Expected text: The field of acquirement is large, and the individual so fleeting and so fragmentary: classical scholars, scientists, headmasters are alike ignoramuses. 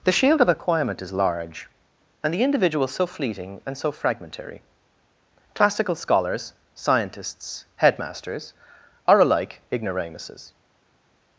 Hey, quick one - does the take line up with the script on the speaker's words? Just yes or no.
no